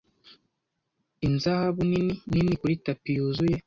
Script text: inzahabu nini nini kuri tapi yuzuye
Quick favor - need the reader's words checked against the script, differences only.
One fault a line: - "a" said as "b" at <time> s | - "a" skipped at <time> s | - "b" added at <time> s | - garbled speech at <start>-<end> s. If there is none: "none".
none